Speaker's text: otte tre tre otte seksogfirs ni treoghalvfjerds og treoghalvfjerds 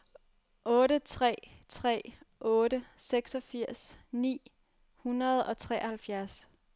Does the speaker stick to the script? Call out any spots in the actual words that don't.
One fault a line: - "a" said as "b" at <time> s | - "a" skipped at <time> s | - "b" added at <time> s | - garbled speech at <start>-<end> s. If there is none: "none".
- "treoghalvfjerds" said as "hundrede" at 4.9 s